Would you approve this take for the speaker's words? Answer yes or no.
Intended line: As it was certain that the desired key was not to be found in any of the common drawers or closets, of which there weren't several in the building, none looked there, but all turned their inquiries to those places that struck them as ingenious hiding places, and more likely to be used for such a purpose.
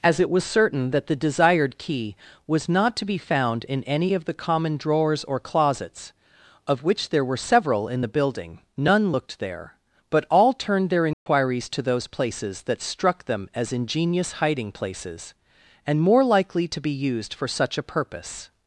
no